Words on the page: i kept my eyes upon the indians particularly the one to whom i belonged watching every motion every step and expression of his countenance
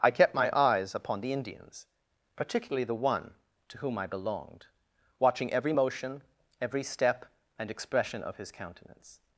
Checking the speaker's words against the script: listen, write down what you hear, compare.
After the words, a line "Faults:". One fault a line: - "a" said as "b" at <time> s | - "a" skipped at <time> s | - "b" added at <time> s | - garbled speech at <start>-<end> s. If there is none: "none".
i kept my eyes upon the indians particularly the one to whom i belonged watching every motion every step and expression of his countenance
Faults:
none